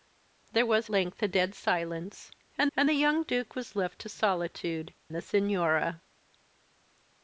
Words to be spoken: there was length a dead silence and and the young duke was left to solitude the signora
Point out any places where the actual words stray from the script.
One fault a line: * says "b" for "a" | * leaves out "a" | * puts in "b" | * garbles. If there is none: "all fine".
all fine